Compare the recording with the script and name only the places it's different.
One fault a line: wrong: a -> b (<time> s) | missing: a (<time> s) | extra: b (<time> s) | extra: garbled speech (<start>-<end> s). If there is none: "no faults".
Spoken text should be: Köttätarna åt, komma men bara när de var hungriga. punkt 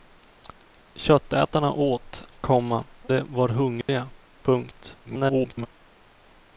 missing: men bara när (2.8 s)
extra: garbled speech (5.0-5.7 s)